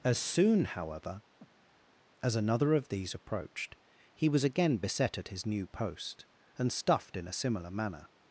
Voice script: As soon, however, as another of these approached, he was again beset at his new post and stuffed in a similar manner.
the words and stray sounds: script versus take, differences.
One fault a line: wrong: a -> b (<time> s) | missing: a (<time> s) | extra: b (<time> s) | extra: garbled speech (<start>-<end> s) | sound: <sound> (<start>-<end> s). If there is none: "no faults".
sound: breath (1.4-1.9 s)